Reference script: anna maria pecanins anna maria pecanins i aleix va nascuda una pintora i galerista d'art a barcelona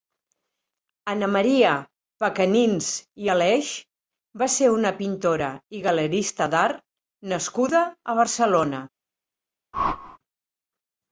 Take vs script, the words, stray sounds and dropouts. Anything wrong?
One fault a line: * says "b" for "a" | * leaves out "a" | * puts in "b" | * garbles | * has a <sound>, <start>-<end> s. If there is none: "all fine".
* leaves out "anna maria pecanins"
* says "ser" for "nascuda"
* puts in "nascuda"
* has a whoosh, 9.7-10.2 s